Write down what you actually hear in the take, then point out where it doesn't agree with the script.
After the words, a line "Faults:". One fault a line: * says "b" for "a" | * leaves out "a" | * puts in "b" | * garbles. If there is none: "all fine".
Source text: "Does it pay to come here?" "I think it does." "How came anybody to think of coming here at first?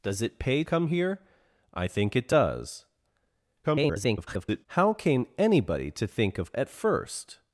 "Does it pay come here?" "I think it does." [garbled] "How came anybody to think of at first?
Faults:
* leaves out "to"
* garbles
* leaves out "coming here"